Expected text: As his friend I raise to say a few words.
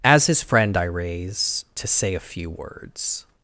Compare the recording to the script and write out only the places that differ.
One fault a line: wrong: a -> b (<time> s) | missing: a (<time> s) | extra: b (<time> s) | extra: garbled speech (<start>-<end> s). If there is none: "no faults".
no faults